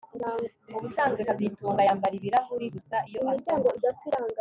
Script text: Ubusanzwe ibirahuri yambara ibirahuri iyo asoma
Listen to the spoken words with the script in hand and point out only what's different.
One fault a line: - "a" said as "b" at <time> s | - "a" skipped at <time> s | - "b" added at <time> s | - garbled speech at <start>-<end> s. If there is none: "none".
- "ibirahuri" said as "kazitunga" at 1.3 s
- "gusa" added at 2.8 s